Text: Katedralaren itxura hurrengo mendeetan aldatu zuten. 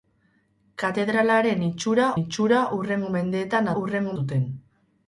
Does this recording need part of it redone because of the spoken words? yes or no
yes